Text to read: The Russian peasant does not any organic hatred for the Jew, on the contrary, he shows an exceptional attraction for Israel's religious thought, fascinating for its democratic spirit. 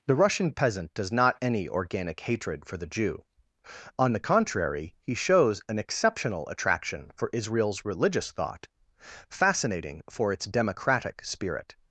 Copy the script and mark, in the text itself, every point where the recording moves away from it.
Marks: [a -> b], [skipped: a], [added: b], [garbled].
The Russian peasant does not any organic hatred for the Jew, on the contrary, he shows an exceptional attraction for Israel's religious thought, fascinating for its democratic spirit.